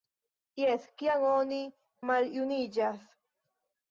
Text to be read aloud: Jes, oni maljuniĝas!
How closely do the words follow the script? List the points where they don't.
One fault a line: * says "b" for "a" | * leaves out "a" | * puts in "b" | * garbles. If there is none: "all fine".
* puts in "kiam"